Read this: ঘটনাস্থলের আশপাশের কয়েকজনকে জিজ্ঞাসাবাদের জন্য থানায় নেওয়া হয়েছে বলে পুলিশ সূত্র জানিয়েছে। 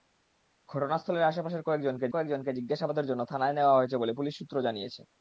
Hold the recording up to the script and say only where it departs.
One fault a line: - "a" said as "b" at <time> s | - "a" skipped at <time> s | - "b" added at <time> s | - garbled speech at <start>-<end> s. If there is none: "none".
- "কয়েকজনকে" added at 2.1 s